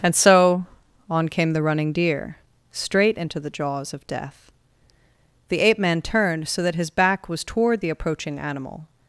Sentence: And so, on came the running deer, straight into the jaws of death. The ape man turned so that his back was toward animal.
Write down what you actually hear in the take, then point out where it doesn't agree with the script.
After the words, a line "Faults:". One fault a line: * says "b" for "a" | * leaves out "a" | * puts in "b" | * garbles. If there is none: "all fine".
And so, on came the running deer, straight into the jaws of death. The ape man turned so that his back was toward the approaching animal.
Faults:
* puts in "the approaching"